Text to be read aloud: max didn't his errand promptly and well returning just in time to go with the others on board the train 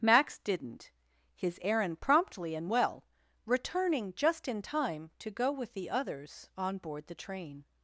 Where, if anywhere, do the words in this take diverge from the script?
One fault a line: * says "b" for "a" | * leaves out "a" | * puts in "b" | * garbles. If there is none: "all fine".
all fine